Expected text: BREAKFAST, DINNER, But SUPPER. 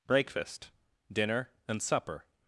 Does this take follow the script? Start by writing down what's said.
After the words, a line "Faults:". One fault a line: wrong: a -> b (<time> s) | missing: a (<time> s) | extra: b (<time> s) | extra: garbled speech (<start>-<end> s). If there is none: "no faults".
BREAKFAST, DINNER, AND SUPPER.
Faults:
wrong: But -> AND (1.7 s)